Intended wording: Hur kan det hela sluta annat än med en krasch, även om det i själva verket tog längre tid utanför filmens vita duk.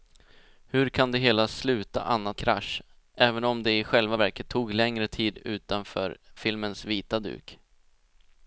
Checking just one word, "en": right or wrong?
wrong